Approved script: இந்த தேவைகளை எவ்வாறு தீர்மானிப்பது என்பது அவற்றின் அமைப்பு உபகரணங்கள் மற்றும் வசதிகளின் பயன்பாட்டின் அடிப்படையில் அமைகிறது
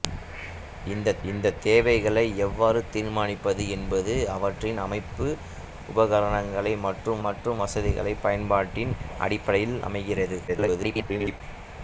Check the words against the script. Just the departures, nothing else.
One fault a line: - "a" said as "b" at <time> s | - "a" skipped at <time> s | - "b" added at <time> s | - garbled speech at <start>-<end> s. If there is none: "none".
- "இந்த" added at 1.3 s
- "மற்றும்" added at 7.3 s
- garbled speech at 10.5-11.4 s